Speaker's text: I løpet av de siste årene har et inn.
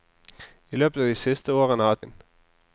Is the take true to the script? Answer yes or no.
yes